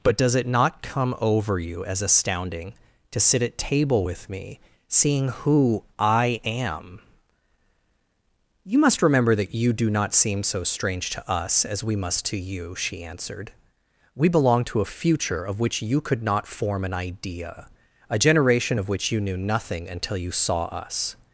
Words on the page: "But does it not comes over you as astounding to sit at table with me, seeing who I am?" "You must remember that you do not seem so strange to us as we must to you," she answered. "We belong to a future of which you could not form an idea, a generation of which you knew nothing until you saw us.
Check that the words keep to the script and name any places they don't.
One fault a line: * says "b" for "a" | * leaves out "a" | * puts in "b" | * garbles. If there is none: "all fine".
* says "come" for "comes"